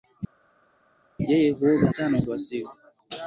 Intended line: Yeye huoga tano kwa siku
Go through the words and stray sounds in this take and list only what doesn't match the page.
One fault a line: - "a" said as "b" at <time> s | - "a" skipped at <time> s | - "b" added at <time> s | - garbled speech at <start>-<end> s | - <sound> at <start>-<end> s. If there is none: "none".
none